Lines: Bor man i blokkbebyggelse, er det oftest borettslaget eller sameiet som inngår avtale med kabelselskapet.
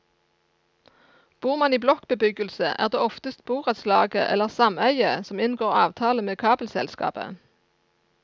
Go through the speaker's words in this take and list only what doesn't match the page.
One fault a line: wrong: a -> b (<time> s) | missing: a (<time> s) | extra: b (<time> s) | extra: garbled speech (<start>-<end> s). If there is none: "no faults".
no faults